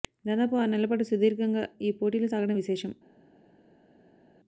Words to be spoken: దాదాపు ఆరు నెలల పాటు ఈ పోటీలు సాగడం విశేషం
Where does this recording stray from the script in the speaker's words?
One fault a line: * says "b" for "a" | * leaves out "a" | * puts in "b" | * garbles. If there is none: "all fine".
* puts in "సుదీర్ఘంగా"